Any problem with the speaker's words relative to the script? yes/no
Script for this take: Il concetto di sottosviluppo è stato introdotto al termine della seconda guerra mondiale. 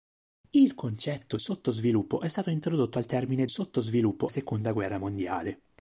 yes